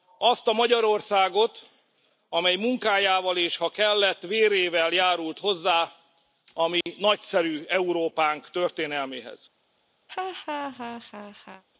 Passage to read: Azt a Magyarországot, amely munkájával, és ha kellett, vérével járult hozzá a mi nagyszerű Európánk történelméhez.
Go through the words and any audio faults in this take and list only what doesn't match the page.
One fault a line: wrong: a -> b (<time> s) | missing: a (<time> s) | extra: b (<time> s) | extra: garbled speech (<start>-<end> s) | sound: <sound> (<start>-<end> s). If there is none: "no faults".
sound: dropout (6.8-6.9 s)
sound: laugh (10.1-11.6 s)